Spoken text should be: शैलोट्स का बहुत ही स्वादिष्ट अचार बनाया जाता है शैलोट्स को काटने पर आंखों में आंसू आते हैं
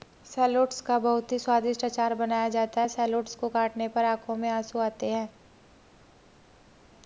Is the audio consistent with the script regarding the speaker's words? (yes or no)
yes